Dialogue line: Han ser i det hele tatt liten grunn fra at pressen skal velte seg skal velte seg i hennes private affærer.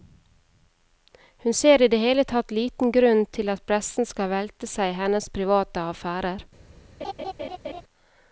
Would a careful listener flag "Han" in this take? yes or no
yes